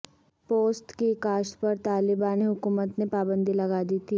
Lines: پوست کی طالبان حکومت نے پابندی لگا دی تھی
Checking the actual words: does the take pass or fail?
fail